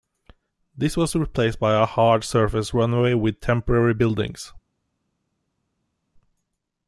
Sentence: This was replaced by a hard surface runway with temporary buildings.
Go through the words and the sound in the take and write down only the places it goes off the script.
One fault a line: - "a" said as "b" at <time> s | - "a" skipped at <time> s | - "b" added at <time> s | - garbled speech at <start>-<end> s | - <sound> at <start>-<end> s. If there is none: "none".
none